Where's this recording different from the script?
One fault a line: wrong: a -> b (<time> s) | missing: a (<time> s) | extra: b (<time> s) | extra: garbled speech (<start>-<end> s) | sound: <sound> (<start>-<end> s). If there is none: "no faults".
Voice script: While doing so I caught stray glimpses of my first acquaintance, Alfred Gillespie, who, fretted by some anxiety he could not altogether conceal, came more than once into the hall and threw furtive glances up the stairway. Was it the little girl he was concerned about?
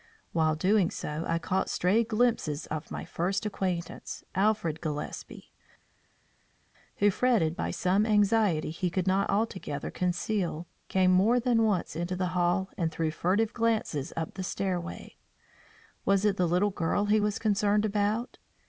no faults